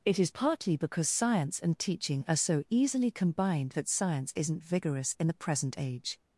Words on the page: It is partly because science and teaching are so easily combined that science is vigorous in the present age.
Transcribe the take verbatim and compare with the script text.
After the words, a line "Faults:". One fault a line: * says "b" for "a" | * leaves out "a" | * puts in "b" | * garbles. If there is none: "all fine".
It is partly because science and teaching are so easily combined that science isn't vigorous in the present age.
Faults:
* says "isn't" for "is"